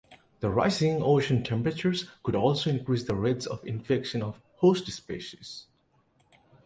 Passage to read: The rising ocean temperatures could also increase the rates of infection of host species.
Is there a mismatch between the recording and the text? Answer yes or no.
no